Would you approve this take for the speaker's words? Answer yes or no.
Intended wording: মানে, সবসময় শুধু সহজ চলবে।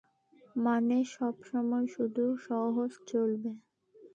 yes